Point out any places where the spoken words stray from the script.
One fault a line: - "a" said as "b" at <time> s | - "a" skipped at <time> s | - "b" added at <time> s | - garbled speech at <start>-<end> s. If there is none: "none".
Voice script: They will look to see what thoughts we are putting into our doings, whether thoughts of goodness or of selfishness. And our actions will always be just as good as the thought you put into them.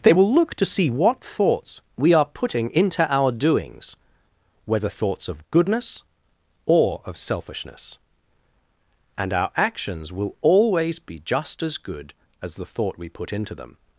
- "you" said as "we" at 13.0 s